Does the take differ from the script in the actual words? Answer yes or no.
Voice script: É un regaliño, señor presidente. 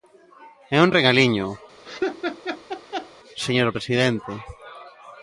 no